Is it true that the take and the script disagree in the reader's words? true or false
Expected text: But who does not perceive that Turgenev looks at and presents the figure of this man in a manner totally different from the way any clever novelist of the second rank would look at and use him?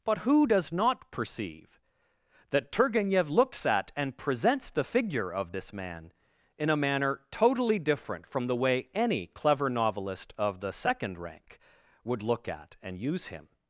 false